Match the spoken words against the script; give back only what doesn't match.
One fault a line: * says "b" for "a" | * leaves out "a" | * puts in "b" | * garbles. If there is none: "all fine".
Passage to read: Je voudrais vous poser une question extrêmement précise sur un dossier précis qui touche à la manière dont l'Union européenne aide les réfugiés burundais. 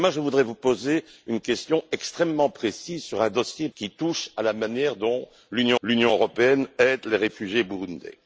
* leaves out "précis"
* puts in "l'Union"